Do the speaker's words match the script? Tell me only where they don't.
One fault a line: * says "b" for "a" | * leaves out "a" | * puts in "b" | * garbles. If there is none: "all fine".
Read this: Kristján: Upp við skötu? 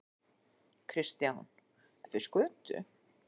all fine